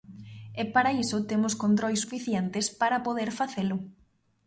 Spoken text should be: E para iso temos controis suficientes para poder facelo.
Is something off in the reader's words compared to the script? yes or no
no